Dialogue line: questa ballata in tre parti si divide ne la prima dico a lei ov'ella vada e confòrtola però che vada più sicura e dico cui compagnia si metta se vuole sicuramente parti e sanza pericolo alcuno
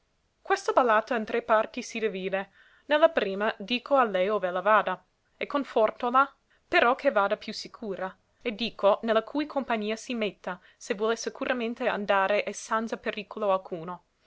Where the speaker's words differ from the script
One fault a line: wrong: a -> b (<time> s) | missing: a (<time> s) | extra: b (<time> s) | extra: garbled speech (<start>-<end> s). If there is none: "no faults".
extra: ne la (9.0 s)
wrong: parti -> andare (11.9 s)